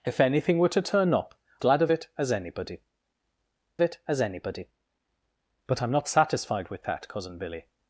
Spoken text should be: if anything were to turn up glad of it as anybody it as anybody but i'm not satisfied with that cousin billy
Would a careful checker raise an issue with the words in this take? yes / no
no